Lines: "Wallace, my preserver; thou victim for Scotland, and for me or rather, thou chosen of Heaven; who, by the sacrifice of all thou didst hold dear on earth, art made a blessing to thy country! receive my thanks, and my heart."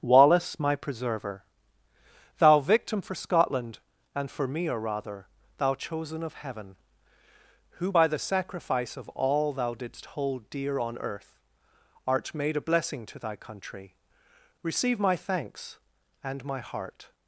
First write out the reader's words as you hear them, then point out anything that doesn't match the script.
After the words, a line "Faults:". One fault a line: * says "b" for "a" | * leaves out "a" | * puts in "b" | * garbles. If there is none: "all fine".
"Wallace, my preserver; thou victim for Scotland, and for me or rather, thou chosen of Heaven; who, by the sacrifice of all thou didst hold dear on earth, art made a blessing to thy country! receive my thanks, and my heart."
Faults:
all fine